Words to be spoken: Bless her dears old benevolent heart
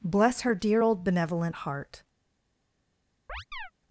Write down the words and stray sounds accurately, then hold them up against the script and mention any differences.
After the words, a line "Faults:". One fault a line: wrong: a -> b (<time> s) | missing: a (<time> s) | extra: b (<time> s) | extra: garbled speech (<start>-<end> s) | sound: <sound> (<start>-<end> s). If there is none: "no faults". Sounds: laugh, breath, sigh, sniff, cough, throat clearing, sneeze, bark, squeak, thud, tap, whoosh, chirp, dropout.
Bless her dear old benevolent heart
Faults:
wrong: dears -> dear (0.6 s)
sound: chirp (3.3-3.7 s)